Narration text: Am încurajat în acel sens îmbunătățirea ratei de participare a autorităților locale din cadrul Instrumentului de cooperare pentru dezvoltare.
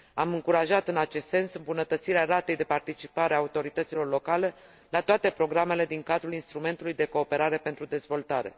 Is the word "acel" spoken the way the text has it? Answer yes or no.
no